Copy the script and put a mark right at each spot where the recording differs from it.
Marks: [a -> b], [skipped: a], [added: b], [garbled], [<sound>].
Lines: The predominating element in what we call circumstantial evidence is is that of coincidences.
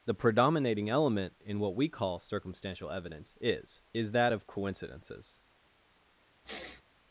The predominating element in what we call circumstantial evidence is is that of coincidences. [sniff]